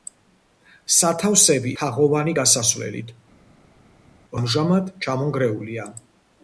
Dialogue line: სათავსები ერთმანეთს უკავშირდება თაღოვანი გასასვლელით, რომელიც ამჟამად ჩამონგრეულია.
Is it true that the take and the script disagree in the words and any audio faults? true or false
true